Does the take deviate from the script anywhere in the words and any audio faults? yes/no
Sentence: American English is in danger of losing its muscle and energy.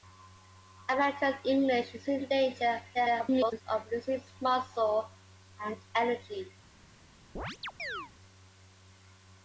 yes